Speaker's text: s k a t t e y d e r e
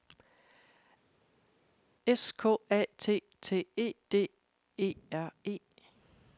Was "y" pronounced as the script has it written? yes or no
no